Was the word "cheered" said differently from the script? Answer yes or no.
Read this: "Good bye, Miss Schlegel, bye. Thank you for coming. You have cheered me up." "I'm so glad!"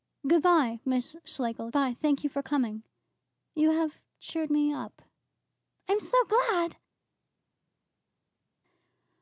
no